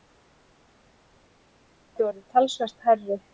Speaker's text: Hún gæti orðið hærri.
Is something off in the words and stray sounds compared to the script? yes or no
yes